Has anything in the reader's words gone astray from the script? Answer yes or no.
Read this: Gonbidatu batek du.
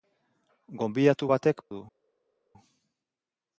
no